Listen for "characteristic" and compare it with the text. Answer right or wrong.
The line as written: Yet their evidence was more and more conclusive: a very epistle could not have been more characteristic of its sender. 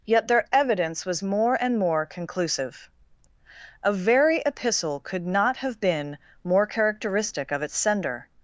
right